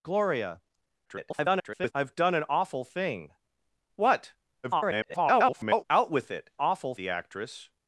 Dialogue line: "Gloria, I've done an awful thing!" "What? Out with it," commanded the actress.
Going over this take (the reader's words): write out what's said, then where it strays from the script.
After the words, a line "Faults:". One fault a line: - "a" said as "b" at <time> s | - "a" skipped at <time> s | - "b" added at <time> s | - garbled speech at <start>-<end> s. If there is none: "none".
"Gloria, [garbled] I've done an awful thing!" "What? [garbled] Out with it," awful the actress.
Faults:
- garbled speech at 1.0-1.9 s
- garbled speech at 4.6-5.8 s
- "commanded" said as "awful" at 6.6 s